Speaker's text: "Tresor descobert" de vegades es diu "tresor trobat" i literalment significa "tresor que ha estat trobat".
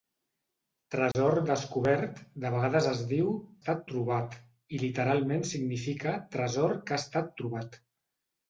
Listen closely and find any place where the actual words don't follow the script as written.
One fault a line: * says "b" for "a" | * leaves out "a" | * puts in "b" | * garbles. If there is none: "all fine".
* says "estat" for "tresor"